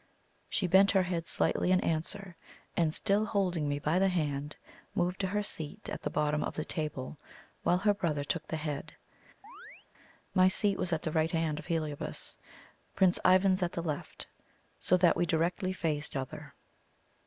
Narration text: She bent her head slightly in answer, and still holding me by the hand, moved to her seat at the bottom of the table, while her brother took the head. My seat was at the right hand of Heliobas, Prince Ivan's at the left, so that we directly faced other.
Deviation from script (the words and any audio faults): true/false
true